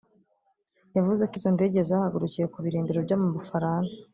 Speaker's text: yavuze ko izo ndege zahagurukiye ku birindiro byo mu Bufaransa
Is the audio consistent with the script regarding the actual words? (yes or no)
yes